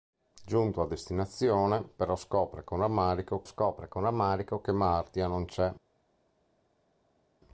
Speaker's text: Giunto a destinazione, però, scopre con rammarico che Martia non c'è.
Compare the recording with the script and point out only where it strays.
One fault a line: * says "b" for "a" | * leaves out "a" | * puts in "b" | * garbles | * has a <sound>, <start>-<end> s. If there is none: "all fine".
* puts in "scopre con rammarico"